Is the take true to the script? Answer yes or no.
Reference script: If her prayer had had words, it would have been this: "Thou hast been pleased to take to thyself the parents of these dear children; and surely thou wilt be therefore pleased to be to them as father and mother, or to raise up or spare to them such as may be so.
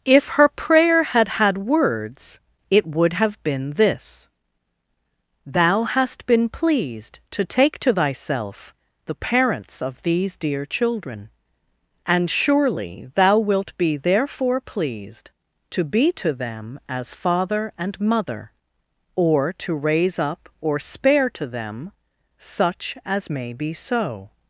yes